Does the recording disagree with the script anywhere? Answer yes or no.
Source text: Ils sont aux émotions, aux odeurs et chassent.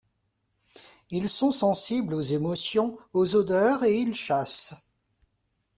yes